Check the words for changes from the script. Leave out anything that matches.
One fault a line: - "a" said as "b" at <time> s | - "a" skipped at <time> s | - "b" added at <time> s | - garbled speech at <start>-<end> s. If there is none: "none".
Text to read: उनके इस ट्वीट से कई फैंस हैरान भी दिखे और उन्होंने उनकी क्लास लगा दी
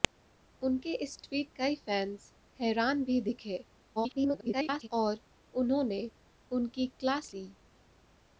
- "से" skipped at 1.5 s
- garbled speech at 4.0-4.9 s
- "लगा" skipped at 7.3 s